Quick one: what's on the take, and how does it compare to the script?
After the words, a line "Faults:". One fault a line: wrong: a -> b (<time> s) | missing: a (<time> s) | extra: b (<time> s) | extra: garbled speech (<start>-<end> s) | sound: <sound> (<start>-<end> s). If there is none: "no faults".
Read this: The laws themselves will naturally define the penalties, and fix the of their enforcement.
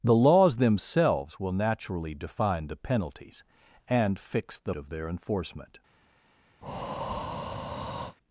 The laws themselves will naturally define the penalties, and fix the of their enforcement.
Faults:
sound: breath (6.6-8.2 s)